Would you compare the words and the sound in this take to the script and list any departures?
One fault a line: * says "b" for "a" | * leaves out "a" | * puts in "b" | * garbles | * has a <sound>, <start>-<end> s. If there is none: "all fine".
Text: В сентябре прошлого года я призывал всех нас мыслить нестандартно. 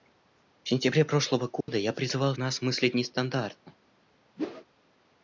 * has a dropout, 1.6-1.7 s
* leaves out "всех"
* has a whoosh, 4.4-4.7 s